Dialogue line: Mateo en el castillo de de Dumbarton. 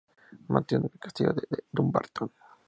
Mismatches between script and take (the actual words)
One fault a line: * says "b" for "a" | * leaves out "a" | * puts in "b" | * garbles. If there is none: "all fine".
all fine